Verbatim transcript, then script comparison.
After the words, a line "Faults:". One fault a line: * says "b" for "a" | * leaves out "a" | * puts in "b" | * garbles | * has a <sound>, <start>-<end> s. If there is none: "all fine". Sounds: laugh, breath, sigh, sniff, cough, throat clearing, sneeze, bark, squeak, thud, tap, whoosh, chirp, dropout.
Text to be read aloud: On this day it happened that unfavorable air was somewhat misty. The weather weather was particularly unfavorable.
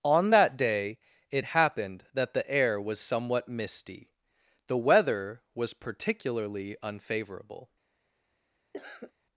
On that day it happened that the air was somewhat misty. The weather was particularly unfavorable.
Faults:
* says "that" for "this"
* says "the" for "unfavorable"
* leaves out "weather"
* has a cough, 8.7-9.1 s